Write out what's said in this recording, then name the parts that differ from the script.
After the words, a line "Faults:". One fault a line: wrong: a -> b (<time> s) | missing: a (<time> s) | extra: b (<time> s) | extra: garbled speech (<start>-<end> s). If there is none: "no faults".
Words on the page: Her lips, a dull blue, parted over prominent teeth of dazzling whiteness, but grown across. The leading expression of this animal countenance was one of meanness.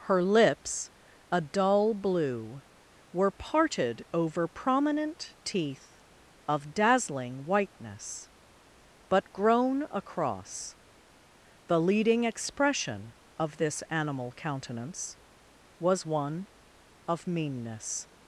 Her lips, a dull blue, were parted over prominent teeth of dazzling whiteness, but grown across. The leading expression of this animal countenance was one of meanness.
Faults:
extra: were (3.1 s)